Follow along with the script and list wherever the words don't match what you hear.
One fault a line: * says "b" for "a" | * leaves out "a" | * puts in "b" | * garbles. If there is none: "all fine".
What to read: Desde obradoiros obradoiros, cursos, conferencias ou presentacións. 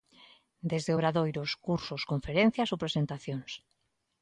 * leaves out "obradoiros"